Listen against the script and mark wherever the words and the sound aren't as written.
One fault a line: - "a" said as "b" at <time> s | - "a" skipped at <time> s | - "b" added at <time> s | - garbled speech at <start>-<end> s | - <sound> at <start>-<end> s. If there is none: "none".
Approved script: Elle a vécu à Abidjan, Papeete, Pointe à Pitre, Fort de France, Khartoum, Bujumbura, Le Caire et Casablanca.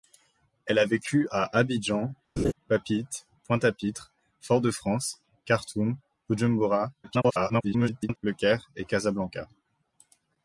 - laugh at 2.4-2.5 s
- garbled speech at 7.0-8.2 s